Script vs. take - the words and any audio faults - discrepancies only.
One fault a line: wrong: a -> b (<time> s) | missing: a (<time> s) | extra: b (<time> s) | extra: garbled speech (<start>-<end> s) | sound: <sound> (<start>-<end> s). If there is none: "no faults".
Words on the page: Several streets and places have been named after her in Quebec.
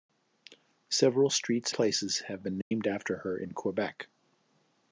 missing: and (1.8 s)
sound: dropout (2.6-2.7 s)